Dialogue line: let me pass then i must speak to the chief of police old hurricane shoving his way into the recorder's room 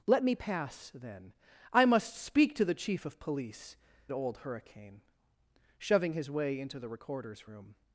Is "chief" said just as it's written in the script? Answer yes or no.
yes